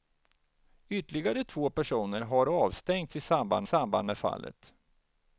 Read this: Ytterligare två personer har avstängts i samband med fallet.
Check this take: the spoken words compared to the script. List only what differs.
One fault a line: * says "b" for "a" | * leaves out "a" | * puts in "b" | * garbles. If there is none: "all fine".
* puts in "samband"